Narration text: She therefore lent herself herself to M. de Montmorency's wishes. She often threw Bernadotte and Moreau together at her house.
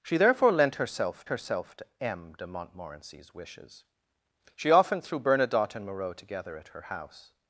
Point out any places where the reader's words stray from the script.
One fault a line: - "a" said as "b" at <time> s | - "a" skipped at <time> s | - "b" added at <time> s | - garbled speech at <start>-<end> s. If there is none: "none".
none